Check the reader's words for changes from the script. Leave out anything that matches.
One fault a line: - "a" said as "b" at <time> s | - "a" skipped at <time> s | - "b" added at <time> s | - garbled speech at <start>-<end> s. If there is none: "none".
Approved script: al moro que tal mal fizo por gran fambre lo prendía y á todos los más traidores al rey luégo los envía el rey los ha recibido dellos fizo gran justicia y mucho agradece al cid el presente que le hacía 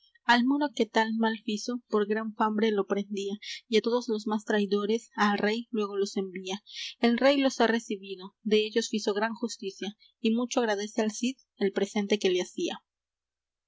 none